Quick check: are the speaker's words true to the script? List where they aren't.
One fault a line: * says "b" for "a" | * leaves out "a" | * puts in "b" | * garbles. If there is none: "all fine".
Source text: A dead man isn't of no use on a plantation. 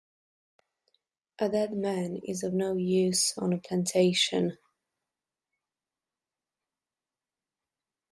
* says "is" for "isn't"